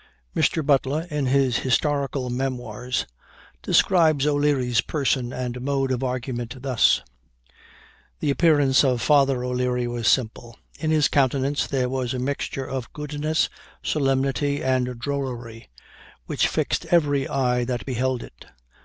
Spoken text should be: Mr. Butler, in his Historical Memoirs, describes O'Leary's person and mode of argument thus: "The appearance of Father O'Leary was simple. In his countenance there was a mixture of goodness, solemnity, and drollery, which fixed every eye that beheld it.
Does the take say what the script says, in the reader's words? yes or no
yes